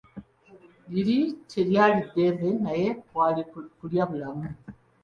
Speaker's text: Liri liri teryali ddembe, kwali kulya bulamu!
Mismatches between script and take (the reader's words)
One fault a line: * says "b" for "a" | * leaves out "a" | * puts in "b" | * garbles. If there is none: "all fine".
* leaves out "liri"
* puts in "naye"